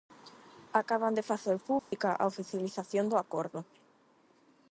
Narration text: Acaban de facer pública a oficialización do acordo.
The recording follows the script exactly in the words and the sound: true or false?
false